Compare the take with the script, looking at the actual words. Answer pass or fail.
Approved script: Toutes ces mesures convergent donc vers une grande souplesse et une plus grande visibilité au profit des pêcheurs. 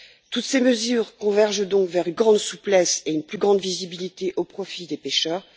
pass